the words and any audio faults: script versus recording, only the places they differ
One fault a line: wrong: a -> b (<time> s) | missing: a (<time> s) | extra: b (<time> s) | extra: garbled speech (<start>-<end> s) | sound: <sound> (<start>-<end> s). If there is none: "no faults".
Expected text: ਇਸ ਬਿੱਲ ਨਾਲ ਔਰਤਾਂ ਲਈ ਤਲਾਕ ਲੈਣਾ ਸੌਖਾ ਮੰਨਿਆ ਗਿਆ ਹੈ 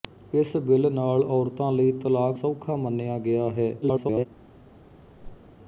missing: ਲੈਣਾ (2.4 s)
extra: garbled speech (3.8-4.3 s)
sound: whoosh (5.2-5.5 s)